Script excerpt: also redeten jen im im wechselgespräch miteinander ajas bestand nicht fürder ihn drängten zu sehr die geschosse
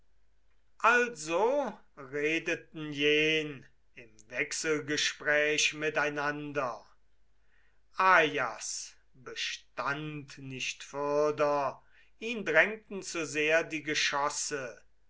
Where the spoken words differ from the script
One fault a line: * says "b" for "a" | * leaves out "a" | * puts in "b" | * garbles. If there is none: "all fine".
* leaves out "im"